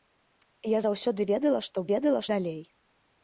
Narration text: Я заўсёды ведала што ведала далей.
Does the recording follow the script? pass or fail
pass